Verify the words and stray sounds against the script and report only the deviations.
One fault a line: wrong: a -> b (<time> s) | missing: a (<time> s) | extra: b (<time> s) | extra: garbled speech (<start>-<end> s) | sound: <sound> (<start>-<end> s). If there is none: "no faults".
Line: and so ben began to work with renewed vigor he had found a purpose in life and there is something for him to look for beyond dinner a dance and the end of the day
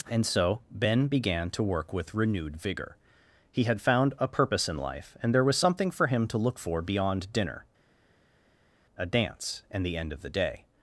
wrong: is -> was (5.4 s)